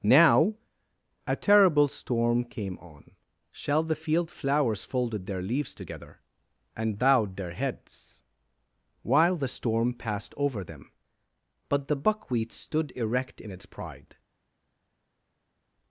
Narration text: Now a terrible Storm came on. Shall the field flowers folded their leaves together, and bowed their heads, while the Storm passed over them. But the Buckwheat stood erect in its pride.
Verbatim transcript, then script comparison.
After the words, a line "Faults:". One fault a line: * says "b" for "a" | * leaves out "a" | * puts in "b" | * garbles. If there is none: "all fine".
Now a terrible Storm came on. Shall the field flowers folded their leaves together, and bowed their heads, while the Storm passed over them. But the Buckwheat stood erect in its pride.
Faults:
all fine